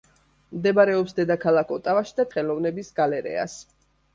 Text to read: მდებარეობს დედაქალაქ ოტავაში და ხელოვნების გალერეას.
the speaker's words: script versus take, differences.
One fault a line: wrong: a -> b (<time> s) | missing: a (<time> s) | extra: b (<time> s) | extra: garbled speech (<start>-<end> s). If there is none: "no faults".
no faults